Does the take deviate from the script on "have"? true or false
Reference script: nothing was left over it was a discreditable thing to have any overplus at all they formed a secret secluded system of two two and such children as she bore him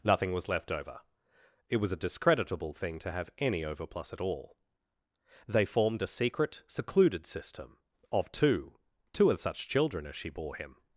false